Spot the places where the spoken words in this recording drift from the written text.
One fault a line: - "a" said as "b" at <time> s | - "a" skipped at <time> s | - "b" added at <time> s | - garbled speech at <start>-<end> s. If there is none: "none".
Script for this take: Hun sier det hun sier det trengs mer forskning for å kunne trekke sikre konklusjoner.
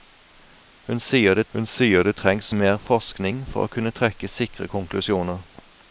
none